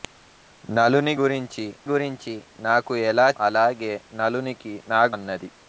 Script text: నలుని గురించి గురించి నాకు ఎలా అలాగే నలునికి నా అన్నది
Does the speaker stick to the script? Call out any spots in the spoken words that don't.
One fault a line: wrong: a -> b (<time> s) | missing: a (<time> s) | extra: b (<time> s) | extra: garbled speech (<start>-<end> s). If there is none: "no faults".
no faults